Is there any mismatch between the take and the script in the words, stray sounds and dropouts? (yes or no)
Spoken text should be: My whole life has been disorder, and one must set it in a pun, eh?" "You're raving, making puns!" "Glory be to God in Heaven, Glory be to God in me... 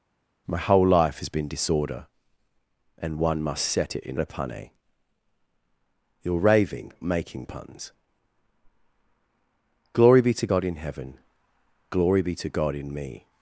no